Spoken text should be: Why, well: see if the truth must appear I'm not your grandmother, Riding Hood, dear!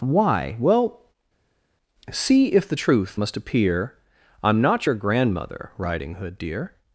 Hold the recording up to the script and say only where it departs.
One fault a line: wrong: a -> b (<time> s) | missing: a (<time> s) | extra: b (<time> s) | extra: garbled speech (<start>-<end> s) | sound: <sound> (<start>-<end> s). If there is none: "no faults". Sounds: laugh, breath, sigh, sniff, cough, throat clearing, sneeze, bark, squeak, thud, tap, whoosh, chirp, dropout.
no faults